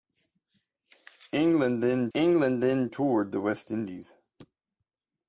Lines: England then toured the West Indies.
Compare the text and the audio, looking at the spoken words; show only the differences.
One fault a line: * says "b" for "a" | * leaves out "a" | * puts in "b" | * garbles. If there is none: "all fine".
* puts in "england then"